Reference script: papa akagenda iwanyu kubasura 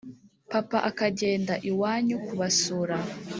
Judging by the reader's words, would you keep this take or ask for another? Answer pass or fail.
pass